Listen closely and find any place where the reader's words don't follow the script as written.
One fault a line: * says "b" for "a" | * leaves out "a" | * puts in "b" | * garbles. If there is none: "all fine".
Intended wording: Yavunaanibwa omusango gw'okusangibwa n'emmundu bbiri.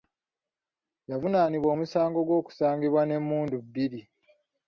all fine